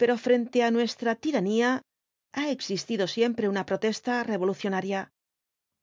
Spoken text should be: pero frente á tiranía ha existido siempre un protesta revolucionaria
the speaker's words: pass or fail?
fail